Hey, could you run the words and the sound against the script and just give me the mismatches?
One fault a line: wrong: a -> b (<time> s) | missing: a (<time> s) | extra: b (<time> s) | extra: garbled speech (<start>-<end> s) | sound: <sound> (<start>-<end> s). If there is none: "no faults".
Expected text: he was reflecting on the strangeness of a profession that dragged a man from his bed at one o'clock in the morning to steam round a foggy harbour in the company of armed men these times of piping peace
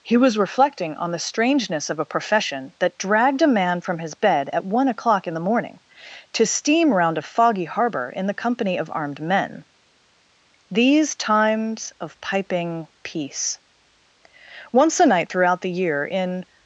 extra: once a night throughout the year in (14.7 s)